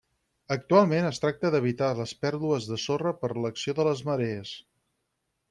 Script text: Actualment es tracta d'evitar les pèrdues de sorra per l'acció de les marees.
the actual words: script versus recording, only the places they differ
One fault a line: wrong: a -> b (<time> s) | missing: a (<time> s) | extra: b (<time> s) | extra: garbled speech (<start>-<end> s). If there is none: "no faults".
no faults